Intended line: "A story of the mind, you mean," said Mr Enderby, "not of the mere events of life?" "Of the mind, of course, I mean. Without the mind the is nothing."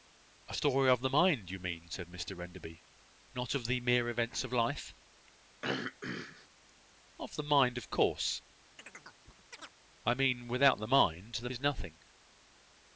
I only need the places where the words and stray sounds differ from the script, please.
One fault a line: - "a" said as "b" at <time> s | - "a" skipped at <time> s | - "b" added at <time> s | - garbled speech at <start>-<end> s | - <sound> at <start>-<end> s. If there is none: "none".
- throat clearing at 5.6-6.5 s
- chirp at 8.8-9.7 s